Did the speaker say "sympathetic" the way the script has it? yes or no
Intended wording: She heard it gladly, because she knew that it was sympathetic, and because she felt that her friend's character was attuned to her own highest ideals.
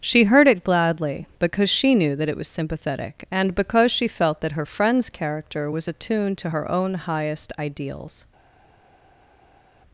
yes